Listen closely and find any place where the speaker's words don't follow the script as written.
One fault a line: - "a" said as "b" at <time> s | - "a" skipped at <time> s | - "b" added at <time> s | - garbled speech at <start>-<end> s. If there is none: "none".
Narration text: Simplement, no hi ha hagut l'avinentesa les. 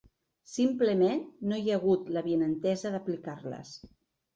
- "d'aplicar" added at 3.0 s